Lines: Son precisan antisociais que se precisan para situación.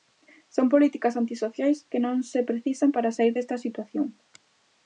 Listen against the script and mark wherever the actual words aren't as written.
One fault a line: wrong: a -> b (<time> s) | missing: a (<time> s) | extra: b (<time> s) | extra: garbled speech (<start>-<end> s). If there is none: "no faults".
wrong: precisan -> políticas (0.7 s)
extra: non (2.1 s)
extra: saír desta (3.2 s)